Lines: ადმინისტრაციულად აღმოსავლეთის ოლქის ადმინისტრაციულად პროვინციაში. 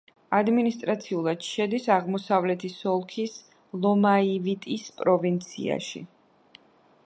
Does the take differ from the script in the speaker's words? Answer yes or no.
yes